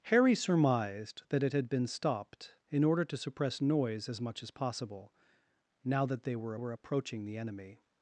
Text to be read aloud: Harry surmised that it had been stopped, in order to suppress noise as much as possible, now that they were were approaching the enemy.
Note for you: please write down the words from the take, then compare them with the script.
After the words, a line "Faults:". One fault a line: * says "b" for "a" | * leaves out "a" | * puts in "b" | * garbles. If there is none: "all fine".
Harry surmised that it had been stopped, in order to suppress noise as much as possible, now that they were were approaching the enemy.
Faults:
all fine